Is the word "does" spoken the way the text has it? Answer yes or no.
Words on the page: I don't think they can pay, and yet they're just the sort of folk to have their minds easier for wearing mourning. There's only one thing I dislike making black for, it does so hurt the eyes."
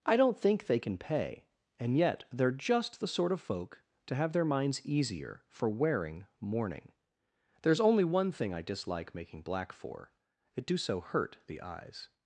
no